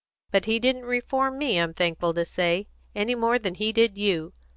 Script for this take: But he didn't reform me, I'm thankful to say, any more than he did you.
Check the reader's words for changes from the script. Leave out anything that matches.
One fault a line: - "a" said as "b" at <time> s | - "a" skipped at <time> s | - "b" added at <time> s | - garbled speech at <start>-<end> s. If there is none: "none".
none